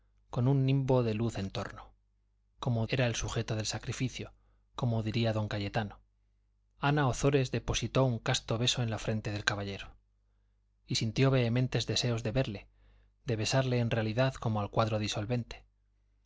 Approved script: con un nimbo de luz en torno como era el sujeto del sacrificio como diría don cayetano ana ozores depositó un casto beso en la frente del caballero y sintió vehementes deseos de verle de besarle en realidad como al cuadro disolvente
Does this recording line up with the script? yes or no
yes